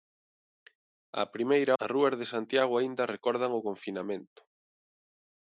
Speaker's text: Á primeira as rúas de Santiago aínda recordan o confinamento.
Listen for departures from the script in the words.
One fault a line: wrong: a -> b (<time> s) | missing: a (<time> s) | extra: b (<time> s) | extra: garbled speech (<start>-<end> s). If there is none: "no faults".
no faults